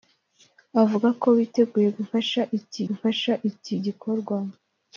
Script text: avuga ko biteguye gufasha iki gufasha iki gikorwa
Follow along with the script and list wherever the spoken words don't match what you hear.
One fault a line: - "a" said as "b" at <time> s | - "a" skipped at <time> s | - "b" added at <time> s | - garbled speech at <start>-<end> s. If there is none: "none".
none